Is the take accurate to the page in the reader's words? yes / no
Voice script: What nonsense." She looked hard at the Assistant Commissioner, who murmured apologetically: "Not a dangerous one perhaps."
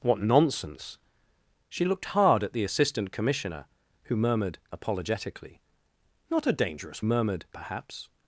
no